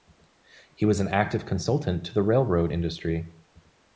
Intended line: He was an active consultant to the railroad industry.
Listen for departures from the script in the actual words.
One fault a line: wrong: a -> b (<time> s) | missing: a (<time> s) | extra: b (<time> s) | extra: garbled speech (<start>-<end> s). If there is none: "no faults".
no faults